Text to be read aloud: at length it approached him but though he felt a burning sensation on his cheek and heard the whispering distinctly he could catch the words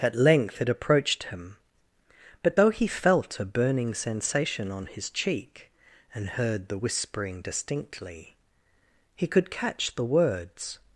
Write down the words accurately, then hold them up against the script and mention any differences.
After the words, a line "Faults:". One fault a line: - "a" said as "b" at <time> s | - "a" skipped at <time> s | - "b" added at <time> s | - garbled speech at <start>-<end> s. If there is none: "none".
at length it approached him but though he felt a burning sensation on his cheek and heard the whispering distinctly he could catch the words
Faults:
none